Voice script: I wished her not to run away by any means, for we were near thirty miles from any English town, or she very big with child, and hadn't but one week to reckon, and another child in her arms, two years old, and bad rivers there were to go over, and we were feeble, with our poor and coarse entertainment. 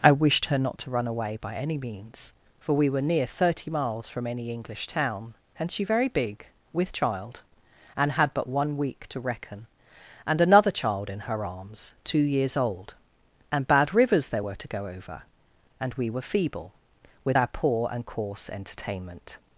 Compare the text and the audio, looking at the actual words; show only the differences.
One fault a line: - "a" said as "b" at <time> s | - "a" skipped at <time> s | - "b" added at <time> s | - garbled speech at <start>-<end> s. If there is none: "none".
- "or" said as "and" at 5.6 s
- "hadn't" said as "had" at 8.1 s